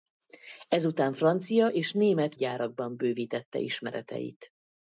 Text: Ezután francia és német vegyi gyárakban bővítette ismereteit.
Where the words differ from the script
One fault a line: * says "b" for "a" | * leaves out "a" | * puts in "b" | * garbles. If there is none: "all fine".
* leaves out "vegyi"